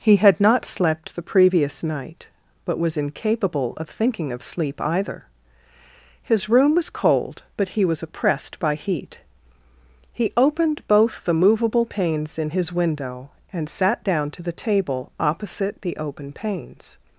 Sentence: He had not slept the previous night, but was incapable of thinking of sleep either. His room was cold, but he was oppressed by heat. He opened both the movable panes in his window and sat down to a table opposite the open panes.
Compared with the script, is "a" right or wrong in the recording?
wrong